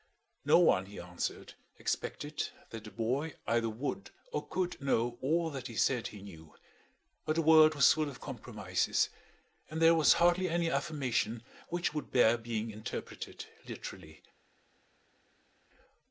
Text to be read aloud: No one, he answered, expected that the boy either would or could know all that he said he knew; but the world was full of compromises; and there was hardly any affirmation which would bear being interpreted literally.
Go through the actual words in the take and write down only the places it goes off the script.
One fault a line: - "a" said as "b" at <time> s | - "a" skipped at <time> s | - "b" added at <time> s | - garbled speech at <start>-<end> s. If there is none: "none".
none